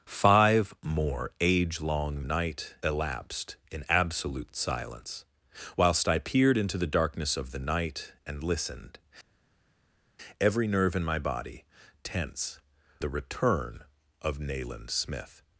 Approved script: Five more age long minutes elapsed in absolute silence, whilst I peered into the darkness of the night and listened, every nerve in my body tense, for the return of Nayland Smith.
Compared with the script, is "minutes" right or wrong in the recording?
wrong